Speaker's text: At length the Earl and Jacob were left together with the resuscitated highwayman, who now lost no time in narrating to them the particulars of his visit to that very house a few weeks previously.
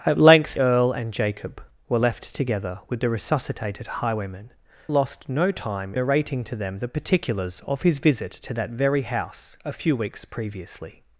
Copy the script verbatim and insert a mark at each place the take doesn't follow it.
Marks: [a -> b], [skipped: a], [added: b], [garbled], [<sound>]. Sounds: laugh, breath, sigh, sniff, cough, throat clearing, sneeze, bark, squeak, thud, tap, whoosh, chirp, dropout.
At length [skipped: the] Earl and Jacob were left together with the resuscitated highwayman, [skipped: who now] lost no time [skipped: in] narrating to them the particulars of his visit to that very house a few weeks previously.